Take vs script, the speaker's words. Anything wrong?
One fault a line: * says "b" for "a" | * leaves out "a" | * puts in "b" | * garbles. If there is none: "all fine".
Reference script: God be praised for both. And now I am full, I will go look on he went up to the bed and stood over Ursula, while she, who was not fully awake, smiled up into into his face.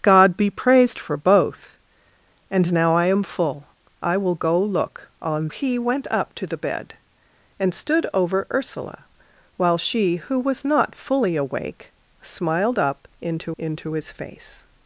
all fine